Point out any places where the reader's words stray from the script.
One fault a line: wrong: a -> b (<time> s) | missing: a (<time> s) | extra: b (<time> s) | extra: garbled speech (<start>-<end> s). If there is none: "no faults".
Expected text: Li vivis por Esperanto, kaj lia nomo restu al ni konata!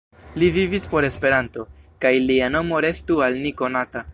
no faults